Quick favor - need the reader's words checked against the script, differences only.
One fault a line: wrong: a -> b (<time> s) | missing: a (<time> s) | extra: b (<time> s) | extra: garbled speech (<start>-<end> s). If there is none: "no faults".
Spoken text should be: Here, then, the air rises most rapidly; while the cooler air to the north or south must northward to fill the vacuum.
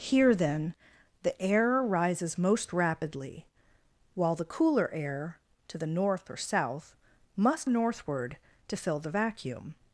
no faults